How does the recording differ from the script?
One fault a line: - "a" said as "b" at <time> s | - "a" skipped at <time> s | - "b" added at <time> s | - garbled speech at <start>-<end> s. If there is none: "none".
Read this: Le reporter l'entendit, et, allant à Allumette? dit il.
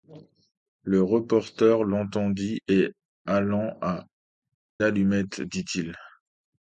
none